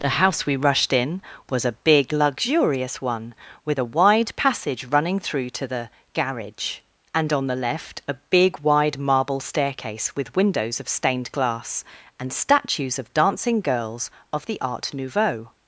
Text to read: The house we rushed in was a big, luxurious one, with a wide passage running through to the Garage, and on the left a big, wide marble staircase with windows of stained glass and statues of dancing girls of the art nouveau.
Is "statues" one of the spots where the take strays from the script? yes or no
no